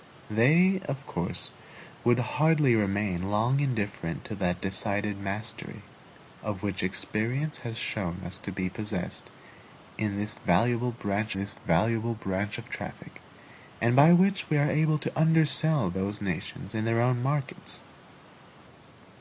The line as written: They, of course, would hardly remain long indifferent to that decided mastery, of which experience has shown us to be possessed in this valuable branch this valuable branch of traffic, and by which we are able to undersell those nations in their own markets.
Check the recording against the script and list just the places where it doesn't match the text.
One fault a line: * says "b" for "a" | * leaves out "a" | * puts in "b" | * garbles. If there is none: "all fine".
all fine